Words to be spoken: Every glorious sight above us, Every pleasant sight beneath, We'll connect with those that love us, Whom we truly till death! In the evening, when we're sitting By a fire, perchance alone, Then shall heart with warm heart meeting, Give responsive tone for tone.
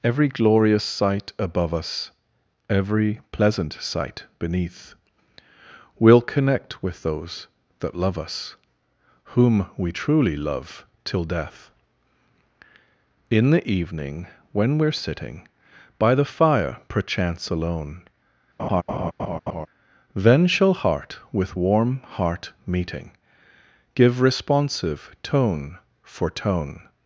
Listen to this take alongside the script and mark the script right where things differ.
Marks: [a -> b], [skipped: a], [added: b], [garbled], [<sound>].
Every glorious sight above us, Every pleasant sight beneath, We'll connect with those that love us, Whom we truly [added: love] till death! In the evening, when we're sitting By [a -> the] fire, perchance alone, [laugh] Then shall heart with warm heart meeting, Give responsive tone for tone.